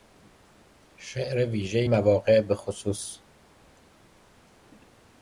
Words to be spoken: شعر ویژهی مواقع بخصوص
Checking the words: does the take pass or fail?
pass